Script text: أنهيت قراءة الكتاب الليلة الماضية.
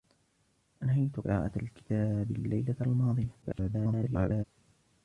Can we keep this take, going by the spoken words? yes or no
no